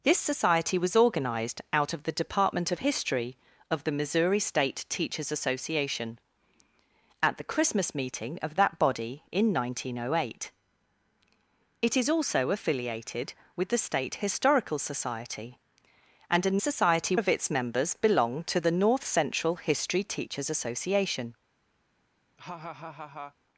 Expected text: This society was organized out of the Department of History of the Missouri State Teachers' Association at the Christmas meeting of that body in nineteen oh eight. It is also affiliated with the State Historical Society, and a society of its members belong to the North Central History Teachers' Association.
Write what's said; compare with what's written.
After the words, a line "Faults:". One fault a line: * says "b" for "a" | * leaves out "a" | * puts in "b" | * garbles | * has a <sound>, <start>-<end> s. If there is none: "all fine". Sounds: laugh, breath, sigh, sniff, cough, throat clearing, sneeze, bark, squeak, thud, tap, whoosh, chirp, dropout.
This society was organized out of the Department of History of the Missouri State Teachers' Association at the Christmas meeting of that body in nineteen oh eight. It is also affiliated with the State Historical Society, and a society of its members belong to the North Central History Teachers' Association.
Faults:
* has a laugh, 22.4-23.4 s